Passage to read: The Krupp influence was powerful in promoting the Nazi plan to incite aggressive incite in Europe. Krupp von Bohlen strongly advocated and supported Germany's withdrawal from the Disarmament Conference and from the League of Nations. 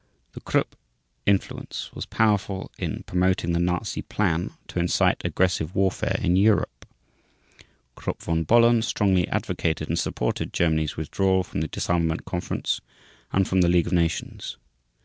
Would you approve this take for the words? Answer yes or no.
no